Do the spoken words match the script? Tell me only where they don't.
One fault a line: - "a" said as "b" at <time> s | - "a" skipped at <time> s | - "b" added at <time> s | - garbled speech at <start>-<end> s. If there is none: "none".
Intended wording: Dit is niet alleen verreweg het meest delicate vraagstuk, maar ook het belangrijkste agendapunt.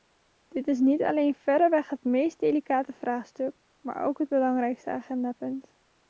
none